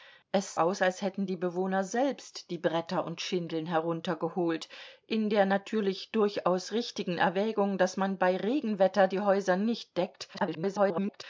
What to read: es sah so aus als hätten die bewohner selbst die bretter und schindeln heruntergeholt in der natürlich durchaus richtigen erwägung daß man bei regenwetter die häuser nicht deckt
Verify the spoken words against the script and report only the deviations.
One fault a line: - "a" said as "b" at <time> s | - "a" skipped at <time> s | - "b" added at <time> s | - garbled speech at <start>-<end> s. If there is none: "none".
- "sah so" skipped at 0.6 s
- garbled speech at 10.3-11.2 s